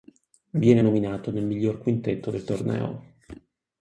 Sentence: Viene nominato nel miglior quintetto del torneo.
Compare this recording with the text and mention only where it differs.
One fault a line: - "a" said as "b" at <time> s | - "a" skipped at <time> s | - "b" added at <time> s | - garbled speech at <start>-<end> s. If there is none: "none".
none